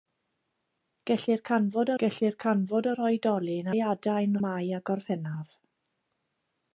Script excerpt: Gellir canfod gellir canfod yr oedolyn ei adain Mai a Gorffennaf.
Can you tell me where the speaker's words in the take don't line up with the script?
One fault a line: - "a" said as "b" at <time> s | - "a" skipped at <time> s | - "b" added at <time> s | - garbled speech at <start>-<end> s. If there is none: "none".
none